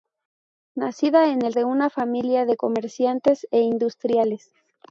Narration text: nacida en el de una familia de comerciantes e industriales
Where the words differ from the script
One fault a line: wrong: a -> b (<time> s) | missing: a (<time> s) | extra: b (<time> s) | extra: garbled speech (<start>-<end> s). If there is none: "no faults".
no faults